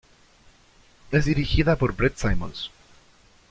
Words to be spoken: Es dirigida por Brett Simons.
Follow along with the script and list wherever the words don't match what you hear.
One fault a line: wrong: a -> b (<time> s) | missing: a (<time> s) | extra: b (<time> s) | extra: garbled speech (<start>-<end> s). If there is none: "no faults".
no faults